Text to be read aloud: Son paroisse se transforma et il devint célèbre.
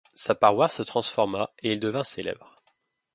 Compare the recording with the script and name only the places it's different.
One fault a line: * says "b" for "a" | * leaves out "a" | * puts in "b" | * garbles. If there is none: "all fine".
* says "Sa" for "Son"